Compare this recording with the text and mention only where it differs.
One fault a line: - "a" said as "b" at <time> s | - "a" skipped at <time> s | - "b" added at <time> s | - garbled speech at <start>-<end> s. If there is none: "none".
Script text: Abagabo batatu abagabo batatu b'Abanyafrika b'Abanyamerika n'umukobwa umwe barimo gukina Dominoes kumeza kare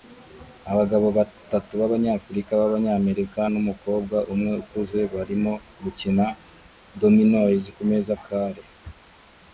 - "abagabo batatu" skipped at 1.7 s
- "ukuze" added at 4.6 s